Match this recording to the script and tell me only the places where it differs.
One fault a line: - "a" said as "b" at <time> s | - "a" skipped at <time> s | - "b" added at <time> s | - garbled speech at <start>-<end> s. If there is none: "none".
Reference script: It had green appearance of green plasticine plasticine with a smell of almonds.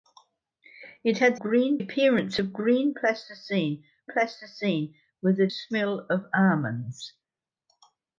none